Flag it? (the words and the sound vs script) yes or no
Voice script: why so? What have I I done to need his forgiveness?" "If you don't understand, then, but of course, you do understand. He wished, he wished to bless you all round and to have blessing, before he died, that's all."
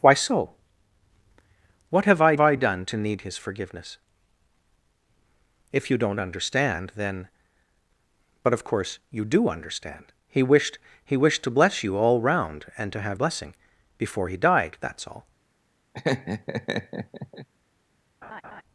yes